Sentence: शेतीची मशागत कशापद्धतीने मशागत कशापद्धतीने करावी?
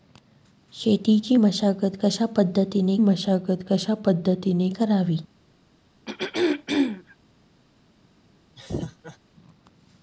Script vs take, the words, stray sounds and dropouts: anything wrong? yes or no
yes